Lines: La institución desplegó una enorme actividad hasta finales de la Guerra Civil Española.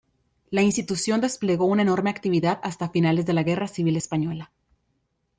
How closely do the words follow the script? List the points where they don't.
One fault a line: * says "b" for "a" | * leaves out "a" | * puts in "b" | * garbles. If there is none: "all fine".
all fine